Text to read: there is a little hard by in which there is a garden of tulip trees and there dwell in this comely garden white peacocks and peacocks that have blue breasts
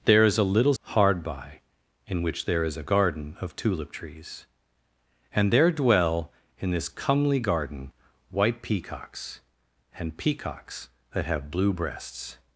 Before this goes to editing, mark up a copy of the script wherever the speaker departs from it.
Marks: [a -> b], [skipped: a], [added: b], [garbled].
there is a little hard by in which there is a garden of tulip trees and there dwell in this comely garden white peacocks and peacocks that have blue breasts